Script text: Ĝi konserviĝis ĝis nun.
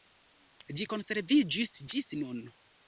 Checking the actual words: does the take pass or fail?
pass